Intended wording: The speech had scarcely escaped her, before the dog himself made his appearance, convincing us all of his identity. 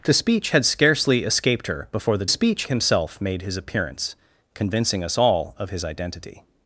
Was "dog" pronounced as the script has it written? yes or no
no